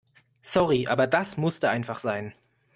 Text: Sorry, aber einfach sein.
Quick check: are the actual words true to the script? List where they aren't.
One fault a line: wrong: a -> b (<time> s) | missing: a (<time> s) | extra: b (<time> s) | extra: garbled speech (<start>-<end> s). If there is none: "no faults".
extra: das musste (1.1 s)